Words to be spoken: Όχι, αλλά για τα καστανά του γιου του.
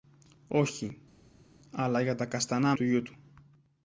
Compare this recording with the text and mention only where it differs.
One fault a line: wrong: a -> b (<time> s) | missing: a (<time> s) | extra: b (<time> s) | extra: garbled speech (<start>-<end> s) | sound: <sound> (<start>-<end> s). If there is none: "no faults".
no faults